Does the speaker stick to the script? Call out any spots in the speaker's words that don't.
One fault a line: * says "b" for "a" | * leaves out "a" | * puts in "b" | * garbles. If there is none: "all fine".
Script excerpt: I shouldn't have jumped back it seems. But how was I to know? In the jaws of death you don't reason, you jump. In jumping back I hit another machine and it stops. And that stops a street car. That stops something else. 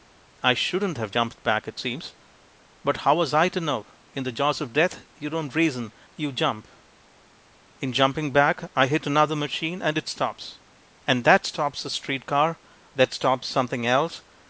all fine